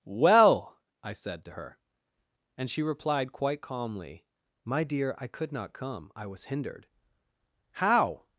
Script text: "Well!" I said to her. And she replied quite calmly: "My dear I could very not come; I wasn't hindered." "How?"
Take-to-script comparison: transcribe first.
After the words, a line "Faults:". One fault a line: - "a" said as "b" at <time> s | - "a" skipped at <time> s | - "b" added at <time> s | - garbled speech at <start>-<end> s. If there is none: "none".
"Well!" I said to her. And she replied quite calmly: "My dear I could not come; I was hindered." "How?"
Faults:
- "very" skipped at 5.5 s
- "wasn't" said as "was" at 6.3 s